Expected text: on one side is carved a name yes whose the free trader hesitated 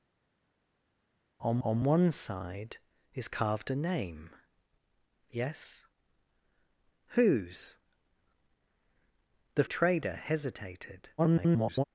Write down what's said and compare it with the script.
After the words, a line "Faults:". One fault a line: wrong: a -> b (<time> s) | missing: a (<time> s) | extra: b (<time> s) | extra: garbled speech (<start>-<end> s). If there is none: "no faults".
on on one side is carved a name yes whose the trader hesitated [garbled]
Faults:
extra: on (1.6 s)
missing: free (9.6 s)
extra: garbled speech (11.2-11.8 s)